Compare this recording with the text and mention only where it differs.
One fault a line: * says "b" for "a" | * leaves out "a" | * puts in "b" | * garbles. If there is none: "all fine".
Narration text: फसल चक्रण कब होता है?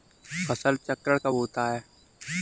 all fine